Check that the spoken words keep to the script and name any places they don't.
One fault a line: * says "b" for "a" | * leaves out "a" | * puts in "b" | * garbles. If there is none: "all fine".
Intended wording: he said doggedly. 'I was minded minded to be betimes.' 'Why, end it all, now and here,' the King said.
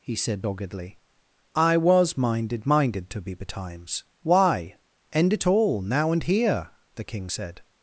all fine